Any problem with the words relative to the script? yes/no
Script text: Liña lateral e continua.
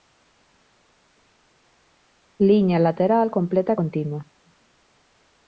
yes